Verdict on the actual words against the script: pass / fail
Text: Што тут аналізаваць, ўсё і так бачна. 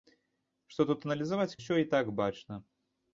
pass